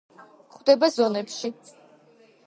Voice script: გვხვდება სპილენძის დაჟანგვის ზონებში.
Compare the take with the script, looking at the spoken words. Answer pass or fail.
fail